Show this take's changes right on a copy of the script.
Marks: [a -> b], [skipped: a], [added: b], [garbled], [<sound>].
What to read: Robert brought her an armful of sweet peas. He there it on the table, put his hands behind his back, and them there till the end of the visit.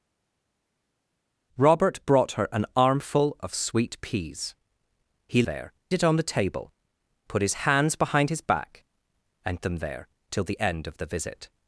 Robert brought her an armful of sweet peas. He there it on the table, put his hands behind his back, and them there till the end of the visit.